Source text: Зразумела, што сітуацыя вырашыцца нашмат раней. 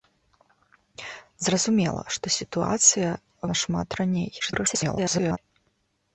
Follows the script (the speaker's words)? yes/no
no